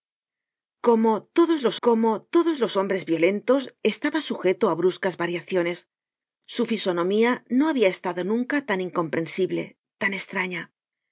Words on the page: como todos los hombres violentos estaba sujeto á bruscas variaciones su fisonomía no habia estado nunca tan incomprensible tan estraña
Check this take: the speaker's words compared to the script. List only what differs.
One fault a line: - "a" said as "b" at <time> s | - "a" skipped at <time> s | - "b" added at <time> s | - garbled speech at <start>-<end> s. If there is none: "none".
- "como todos los" added at 1.9 s